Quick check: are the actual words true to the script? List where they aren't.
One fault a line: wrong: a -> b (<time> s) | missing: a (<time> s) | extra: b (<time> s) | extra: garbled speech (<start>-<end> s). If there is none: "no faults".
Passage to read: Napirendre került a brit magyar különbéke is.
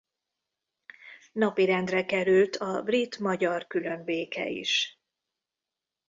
no faults